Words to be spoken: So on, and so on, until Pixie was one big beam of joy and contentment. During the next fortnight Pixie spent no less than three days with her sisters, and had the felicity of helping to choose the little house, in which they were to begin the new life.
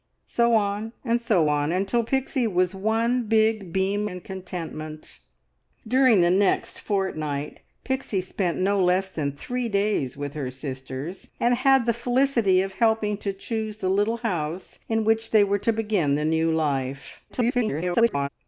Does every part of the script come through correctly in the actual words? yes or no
no